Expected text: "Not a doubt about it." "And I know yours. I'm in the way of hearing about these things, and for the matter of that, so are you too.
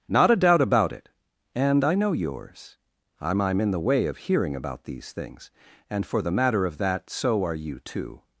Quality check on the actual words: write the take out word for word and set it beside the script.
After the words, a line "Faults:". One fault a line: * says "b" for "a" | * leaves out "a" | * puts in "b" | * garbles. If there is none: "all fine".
"Not a doubt about it." "And I know yours. I'm I'm in the way of hearing about these things, and for the matter of that, so are you too.
Faults:
* puts in "I'm"